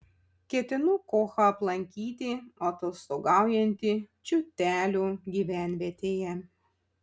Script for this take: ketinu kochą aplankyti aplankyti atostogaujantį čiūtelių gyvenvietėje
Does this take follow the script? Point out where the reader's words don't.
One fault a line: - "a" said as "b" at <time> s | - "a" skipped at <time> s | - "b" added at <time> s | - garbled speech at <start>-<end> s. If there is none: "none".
- "aplankyti" skipped at 2.3 s